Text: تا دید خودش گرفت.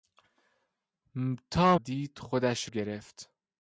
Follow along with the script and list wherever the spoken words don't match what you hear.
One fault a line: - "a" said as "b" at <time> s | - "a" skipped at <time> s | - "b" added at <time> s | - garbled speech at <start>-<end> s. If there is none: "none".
none